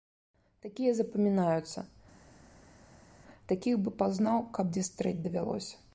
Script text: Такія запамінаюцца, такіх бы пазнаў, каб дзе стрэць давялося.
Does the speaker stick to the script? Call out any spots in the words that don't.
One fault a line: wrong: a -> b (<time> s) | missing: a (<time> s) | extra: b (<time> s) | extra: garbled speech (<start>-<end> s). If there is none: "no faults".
no faults